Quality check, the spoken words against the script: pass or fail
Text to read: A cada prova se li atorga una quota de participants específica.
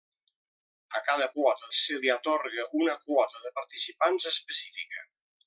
fail